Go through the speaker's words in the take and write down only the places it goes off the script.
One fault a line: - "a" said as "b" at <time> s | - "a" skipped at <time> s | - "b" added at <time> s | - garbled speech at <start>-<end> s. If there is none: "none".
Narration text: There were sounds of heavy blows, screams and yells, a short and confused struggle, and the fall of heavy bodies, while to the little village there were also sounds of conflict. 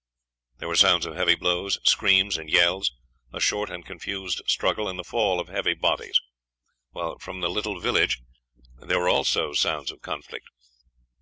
- "to" said as "from" at 7.2 s